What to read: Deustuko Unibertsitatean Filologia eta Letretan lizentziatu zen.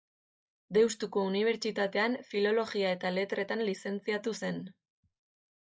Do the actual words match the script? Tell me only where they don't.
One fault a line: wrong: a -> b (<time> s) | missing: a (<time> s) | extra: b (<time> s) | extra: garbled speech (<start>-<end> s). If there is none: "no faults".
no faults